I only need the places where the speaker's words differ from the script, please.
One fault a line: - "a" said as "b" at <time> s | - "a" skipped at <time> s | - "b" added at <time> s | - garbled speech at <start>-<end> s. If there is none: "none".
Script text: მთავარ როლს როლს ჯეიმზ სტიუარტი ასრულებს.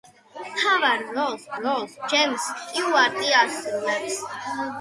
none